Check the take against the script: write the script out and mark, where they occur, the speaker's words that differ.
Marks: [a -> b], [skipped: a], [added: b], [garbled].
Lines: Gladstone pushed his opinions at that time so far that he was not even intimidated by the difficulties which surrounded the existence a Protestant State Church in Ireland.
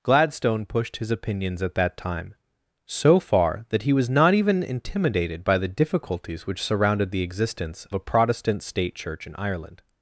Gladstone pushed his opinions at that time so far that he was not even intimidated by the difficulties which surrounded the existence a Protestant State Church in Ireland.